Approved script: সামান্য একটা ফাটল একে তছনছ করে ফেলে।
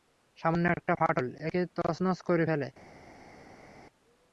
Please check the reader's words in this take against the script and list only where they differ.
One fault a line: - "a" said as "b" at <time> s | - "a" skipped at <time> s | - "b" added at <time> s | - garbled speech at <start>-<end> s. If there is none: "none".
none